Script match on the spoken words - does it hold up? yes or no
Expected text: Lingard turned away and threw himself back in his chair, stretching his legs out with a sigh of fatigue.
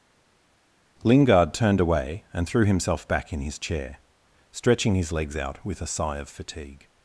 yes